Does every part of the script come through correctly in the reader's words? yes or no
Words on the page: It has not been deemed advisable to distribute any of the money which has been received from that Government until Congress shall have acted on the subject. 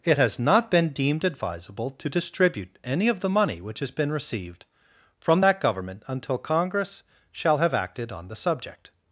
yes